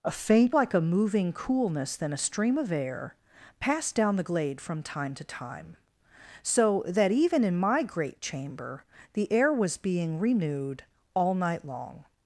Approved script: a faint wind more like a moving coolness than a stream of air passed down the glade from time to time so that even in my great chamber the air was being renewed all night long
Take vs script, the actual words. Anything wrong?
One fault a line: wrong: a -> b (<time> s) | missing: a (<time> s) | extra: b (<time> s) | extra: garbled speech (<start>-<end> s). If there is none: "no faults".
missing: wind more (0.6 s)